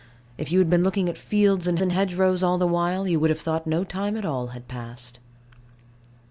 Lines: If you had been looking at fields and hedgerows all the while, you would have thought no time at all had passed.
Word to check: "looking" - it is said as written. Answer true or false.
true